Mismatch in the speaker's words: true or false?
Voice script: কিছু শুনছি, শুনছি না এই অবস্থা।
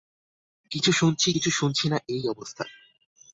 true